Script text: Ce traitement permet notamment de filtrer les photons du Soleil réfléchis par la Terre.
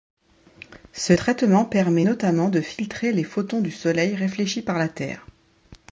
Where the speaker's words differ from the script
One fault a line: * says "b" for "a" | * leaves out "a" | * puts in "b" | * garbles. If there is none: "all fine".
all fine